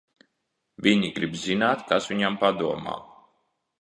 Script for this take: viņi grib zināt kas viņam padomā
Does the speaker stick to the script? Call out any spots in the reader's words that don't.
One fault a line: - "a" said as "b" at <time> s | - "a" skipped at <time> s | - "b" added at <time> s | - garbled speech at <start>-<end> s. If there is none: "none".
none